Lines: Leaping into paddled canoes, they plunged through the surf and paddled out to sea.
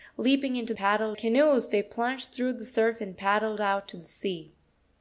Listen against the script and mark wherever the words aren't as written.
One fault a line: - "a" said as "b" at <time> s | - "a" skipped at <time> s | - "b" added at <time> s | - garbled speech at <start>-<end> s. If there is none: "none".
none